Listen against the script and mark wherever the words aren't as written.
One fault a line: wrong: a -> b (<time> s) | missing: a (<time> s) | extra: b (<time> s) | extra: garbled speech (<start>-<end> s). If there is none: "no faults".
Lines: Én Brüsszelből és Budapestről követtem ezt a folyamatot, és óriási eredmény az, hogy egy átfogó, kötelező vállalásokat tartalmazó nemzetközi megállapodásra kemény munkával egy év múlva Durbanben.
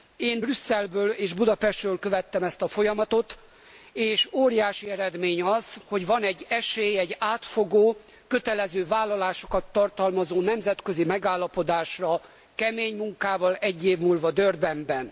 extra: van egy esély (6.1 s)